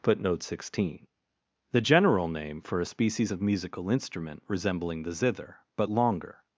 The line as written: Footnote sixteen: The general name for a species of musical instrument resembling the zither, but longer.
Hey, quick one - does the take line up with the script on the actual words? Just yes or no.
yes